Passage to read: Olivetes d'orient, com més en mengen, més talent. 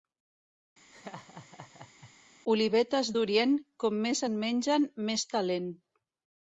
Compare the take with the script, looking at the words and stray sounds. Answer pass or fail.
fail